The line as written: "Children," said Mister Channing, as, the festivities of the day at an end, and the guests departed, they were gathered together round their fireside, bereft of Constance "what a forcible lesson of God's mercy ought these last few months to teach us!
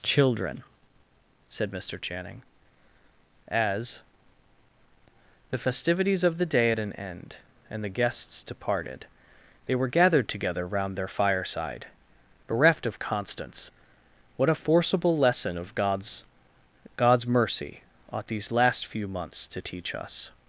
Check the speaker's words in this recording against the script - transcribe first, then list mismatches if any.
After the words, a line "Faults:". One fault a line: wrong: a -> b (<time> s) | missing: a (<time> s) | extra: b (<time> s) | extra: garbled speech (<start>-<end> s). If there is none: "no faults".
"Children," said Mister Channing, as, the festivities of the day at an end, and the guests departed, they were gathered together round their fireside, bereft of Constance "what a forcible lesson of God's God's mercy ought these last few months to teach us!
Faults:
extra: God's (17.0 s)